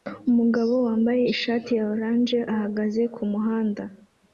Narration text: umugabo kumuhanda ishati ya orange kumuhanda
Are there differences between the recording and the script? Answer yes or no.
yes